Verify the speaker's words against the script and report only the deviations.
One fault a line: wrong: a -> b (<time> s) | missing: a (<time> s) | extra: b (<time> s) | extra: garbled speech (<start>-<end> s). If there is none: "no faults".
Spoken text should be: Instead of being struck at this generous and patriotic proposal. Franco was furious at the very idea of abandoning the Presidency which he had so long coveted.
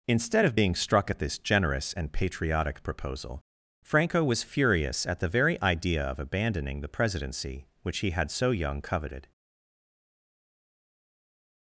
wrong: long -> young (8.5 s)